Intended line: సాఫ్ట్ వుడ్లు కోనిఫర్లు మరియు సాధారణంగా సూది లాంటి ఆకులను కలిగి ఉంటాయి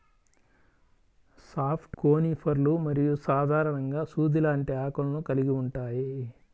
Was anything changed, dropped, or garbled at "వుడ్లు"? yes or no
yes